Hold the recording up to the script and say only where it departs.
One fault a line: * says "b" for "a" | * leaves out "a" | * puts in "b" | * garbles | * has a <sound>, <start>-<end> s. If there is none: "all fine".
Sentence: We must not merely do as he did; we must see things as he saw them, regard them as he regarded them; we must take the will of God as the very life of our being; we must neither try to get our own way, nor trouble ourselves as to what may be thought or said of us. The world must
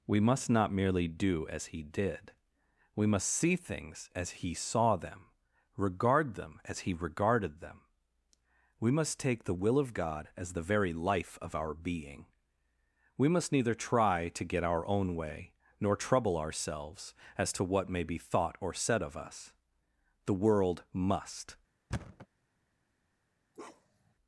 * has a thud, 21.9-22.3 s
* has a bark, 23.5-24.1 s